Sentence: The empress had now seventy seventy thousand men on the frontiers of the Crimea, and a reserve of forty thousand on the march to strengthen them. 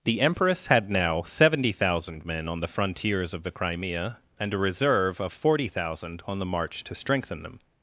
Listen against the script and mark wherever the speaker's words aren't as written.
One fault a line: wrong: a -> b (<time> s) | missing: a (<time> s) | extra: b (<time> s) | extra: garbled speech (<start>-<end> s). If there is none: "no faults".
missing: seventy (1.7 s)